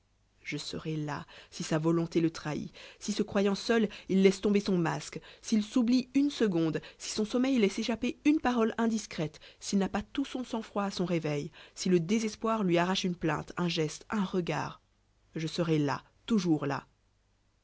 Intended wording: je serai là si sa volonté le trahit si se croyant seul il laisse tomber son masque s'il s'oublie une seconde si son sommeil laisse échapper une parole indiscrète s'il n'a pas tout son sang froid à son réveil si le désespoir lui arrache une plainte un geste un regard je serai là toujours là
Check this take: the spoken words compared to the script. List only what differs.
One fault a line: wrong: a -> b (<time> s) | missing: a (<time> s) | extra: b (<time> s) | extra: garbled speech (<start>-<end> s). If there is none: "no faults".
no faults